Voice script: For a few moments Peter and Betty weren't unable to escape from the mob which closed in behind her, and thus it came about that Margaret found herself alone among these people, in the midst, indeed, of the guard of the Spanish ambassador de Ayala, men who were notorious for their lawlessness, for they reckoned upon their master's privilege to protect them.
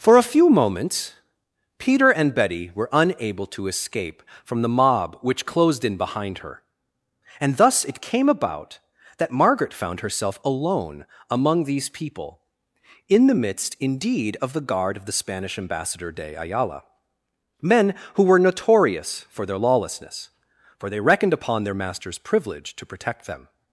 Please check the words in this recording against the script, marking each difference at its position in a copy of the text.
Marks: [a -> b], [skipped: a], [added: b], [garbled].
For a few moments Peter and Betty [weren't -> were] unable to escape from the mob which closed in behind her, and thus it came about that Margaret found herself alone among these people, in the midst, indeed, of the guard of the Spanish ambassador de Ayala, men who were notorious for their lawlessness, for they reckoned upon their master's privilege to protect them.